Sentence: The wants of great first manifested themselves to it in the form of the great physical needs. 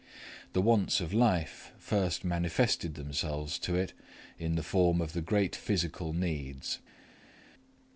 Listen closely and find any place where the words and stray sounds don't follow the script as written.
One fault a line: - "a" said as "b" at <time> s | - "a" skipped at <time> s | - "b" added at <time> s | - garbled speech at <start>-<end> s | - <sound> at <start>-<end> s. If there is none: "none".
- "great" said as "life" at 1.1 s